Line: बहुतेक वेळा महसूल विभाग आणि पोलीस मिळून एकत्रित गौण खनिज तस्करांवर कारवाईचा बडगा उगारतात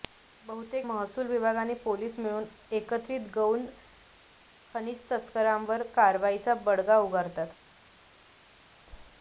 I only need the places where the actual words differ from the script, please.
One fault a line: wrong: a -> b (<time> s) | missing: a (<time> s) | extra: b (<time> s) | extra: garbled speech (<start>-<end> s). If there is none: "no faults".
missing: वेळा (0.9 s)